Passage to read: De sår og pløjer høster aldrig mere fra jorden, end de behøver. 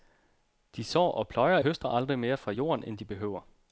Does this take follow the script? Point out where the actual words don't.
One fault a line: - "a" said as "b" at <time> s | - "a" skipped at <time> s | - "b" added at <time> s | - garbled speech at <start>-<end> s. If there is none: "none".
none